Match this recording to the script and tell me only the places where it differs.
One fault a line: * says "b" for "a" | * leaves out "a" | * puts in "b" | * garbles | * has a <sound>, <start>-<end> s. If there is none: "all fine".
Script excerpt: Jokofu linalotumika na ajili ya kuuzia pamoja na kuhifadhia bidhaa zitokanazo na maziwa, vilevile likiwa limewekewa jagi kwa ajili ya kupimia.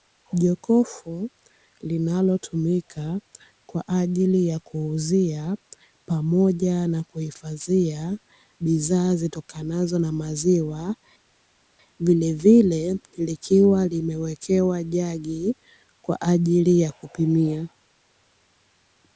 * says "kwa" for "na"